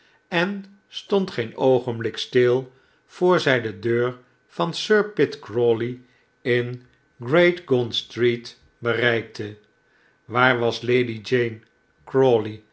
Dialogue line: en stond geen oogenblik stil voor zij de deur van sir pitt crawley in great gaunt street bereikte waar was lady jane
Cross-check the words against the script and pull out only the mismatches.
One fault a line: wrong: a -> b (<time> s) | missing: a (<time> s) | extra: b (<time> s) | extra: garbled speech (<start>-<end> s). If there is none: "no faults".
no faults